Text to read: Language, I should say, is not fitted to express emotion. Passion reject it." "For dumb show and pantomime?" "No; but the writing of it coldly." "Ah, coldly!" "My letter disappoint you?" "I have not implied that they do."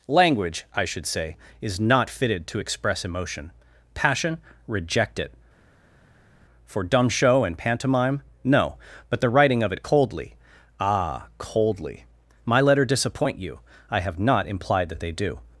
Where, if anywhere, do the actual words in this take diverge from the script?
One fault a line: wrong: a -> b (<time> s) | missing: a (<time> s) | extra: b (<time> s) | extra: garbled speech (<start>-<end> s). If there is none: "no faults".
no faults